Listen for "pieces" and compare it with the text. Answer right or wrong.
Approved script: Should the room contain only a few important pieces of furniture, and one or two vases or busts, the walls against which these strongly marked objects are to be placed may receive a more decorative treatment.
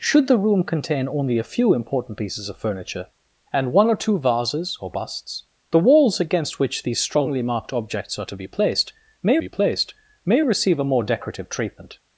right